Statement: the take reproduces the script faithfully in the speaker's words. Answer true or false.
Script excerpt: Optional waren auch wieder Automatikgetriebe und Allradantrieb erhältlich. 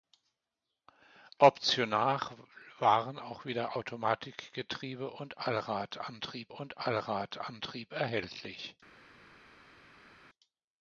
false